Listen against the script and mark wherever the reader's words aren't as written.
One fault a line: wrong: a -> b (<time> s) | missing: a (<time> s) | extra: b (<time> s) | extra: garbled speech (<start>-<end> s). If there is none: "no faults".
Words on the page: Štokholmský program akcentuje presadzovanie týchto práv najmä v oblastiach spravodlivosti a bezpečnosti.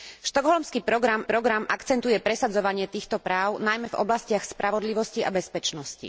extra: program (1.2 s)